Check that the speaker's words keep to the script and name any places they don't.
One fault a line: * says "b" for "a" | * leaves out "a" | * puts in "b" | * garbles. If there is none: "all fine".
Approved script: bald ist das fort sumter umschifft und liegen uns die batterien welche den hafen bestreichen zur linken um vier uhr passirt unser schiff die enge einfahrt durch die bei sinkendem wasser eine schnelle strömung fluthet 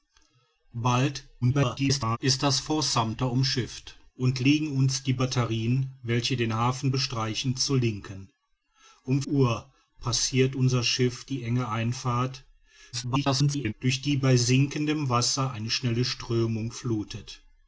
* garbles
* leaves out "vier"
* garbles